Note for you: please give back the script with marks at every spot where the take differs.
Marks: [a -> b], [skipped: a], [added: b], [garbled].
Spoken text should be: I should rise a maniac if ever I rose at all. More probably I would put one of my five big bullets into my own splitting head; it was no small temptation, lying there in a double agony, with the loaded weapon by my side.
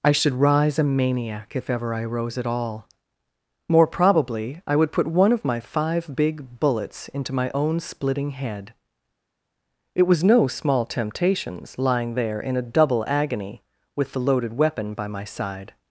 I should rise a maniac if ever I rose at all. More probably I would put one of my five big bullets into my own splitting head; it was no small [temptation, -> temptations] lying there in a double agony, with the loaded weapon by my side.